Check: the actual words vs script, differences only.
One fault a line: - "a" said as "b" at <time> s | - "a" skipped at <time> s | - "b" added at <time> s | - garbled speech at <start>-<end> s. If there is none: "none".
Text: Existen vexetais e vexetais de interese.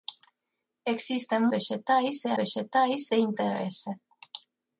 none